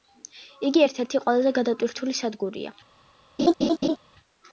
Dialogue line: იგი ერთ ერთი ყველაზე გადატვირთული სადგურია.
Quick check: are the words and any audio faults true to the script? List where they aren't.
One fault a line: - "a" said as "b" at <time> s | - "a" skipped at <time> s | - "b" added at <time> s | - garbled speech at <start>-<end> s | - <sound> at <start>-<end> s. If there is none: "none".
- laugh at 3.4-4.0 s